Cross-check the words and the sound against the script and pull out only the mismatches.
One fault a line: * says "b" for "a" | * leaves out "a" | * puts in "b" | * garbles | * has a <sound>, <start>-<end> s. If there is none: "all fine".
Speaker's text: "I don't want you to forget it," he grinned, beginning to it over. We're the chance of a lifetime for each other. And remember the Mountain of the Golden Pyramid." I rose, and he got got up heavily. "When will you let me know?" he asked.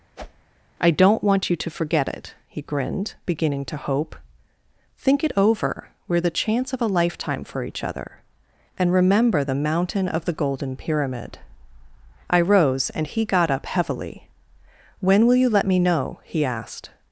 * has a whoosh, 0.2-0.5 s
* puts in "hope Think"
* leaves out "got"